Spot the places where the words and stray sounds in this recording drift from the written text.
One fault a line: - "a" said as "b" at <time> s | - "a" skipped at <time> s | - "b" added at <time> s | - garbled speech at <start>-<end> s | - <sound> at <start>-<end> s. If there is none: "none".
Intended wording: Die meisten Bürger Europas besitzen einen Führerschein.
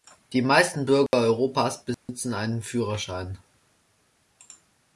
- dropout at 1.1-1.1 s
- dropout at 1.9-2.1 s